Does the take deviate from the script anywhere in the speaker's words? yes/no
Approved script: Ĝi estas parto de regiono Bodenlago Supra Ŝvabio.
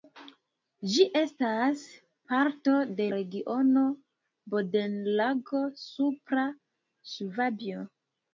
no